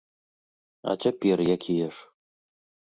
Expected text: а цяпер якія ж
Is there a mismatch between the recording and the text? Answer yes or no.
no